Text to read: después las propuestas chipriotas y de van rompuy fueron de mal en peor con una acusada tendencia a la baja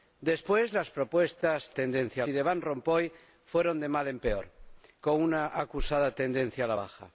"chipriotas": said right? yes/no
no